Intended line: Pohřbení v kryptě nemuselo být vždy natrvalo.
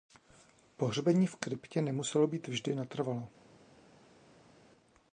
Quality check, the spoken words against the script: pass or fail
pass